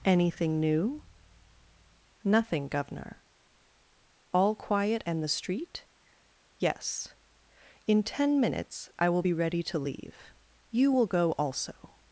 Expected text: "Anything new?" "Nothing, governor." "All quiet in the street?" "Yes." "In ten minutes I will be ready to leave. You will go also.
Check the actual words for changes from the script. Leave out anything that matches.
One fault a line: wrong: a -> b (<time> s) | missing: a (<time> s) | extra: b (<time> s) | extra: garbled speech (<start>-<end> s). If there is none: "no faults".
wrong: in -> and (5.0 s)